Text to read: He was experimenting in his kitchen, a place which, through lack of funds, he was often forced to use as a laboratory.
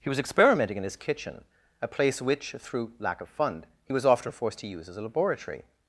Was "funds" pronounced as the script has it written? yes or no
no